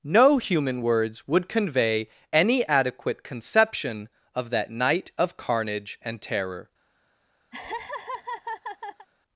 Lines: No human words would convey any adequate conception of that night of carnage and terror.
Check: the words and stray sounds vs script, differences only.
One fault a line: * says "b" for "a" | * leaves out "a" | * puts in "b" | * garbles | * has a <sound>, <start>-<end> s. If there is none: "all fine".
* has a laugh, 7.5-9.1 s